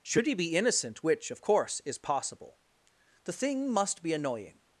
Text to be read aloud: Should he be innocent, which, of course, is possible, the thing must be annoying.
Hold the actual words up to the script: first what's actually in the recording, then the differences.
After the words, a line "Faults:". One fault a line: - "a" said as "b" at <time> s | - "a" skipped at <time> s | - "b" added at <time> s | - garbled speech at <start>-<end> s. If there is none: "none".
Should he be innocent, which, of course, is possible, the thing must be annoying.
Faults:
none